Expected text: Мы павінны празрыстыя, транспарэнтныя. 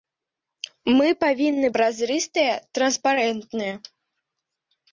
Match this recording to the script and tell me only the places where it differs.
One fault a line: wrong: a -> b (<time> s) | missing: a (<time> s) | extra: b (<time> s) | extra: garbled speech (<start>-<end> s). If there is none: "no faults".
no faults